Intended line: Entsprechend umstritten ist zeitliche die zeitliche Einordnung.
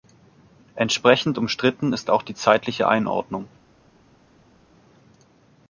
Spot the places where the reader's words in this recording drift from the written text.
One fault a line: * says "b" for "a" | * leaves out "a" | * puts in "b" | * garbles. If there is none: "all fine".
* says "auch" for "zeitliche"